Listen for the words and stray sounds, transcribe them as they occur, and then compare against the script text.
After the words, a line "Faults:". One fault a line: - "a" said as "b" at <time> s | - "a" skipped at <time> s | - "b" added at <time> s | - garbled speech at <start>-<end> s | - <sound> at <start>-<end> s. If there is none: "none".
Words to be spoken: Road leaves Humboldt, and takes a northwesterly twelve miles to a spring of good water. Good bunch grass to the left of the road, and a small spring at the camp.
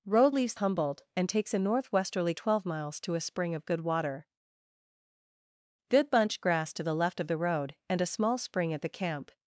Road leaves Humboldt, and takes a northwesterly twelve miles to a spring of good water. Good bunch grass to the left of the road, and a small spring at the camp.
Faults:
none